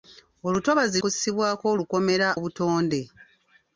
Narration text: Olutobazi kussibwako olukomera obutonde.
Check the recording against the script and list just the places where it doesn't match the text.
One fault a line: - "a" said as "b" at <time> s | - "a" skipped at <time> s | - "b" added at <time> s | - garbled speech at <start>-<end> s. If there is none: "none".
none